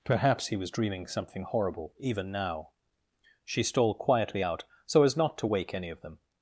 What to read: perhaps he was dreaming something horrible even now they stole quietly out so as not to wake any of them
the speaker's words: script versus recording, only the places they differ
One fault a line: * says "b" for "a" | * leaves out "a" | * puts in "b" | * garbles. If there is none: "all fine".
* says "she" for "they"